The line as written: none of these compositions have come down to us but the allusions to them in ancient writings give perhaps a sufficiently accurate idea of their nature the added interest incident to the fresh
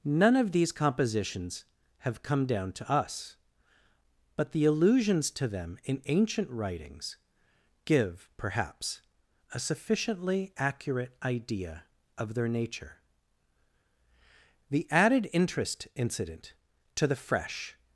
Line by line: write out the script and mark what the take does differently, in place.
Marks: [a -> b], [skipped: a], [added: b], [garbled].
none of these compositions have come down to us but the allusions to them in ancient writings give perhaps a sufficiently accurate idea of their nature the added interest incident to the fresh